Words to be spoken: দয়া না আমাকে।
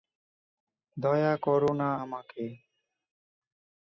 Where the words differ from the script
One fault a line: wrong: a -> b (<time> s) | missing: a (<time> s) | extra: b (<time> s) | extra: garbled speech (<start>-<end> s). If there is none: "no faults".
extra: করো (1.4 s)